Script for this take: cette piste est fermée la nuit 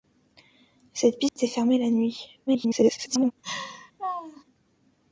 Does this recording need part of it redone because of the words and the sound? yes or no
yes